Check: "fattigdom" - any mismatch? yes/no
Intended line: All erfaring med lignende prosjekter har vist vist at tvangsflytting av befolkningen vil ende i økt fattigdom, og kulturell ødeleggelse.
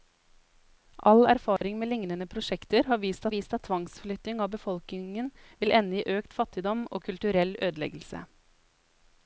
no